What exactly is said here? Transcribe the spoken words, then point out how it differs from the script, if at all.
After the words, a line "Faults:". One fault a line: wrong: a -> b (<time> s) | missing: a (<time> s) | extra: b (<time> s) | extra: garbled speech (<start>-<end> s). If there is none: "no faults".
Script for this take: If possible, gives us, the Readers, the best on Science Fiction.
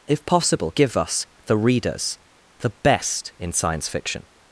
If possible, give us, the Readers, the best in Science Fiction.
Faults:
wrong: gives -> give (0.8 s)
wrong: on -> in (3.4 s)